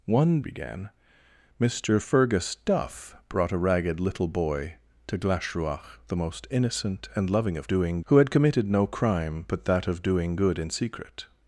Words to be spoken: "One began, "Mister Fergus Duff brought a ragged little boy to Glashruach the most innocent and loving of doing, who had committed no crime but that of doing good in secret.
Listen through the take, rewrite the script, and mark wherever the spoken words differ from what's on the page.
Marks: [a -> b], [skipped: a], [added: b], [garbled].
"One began, "Mister Fergus Duff brought a ragged little boy to Glashruach the most innocent and loving of doing, who had committed no crime but that of doing good in secret.